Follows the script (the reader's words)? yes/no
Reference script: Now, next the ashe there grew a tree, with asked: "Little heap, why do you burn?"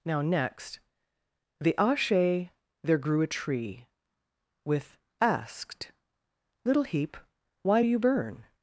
yes